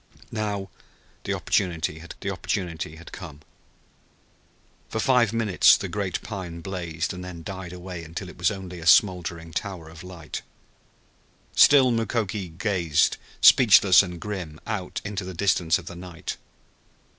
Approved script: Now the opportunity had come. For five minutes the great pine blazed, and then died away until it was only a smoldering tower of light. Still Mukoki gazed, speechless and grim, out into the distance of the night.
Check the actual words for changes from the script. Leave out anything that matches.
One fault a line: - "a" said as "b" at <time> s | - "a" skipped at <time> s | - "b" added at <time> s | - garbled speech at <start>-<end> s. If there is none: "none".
- "the opportunity had" added at 2.2 s